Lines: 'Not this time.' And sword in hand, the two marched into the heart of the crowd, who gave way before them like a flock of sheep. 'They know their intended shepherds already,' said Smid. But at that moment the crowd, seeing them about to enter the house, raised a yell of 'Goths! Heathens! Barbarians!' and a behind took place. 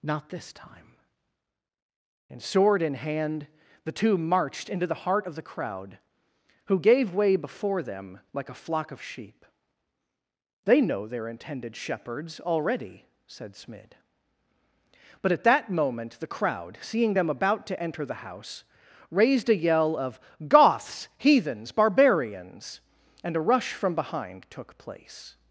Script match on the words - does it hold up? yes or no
no